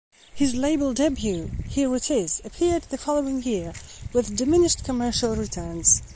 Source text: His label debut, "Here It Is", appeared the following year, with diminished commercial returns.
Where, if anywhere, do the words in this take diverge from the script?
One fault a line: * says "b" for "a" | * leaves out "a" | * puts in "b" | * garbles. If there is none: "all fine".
all fine